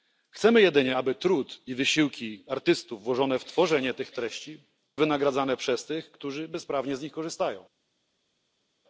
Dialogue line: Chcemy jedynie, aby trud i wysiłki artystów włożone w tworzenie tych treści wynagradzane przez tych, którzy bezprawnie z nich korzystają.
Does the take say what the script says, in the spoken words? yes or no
yes